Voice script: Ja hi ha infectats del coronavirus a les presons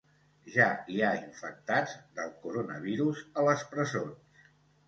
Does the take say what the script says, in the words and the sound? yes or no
yes